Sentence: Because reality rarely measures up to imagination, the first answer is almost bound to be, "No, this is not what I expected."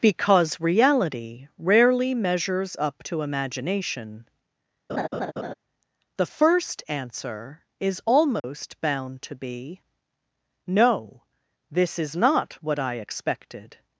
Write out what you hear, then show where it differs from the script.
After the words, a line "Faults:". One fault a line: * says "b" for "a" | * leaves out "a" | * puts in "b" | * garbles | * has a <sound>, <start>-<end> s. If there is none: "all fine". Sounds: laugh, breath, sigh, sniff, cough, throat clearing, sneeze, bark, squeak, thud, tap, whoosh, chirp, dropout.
Because reality rarely measures up to imagination, the first answer is almost bound to be, "No, this is not what I expected."
Faults:
* has a laugh, 4.9-5.5 s
* has a dropout, 8.4-8.4 s